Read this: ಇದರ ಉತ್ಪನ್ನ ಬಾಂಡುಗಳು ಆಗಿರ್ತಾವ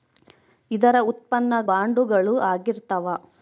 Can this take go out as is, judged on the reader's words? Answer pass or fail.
pass